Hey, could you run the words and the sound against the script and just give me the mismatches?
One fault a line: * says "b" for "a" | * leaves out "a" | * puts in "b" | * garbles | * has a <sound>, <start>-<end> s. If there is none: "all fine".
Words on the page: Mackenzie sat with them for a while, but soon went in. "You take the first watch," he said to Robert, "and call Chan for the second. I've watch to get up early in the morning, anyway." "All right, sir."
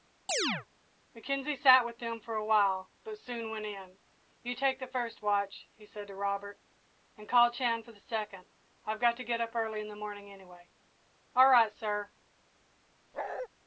* has a chirp, 0.3-0.7 s
* says "got" for "watch"
* has a bark, 13.1-13.5 s